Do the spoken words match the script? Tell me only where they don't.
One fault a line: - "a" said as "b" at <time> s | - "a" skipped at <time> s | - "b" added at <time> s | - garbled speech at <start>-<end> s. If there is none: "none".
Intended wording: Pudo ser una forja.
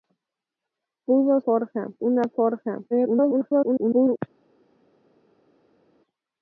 - "ser" said as "forja" at 1.4 s
- garbled speech at 2.9-4.2 s